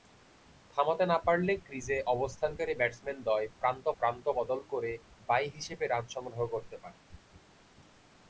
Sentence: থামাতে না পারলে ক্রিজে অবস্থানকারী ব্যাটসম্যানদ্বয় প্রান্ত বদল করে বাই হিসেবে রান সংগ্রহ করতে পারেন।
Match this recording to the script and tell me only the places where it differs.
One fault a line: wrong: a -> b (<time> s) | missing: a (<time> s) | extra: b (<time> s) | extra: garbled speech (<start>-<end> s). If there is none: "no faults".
extra: প্রান্ত (4.0 s)